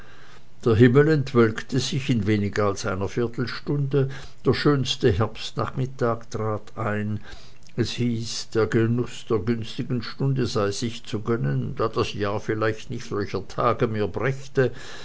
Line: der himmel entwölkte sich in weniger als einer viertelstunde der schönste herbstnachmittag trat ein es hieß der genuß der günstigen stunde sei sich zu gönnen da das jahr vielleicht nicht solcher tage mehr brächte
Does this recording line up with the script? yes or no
yes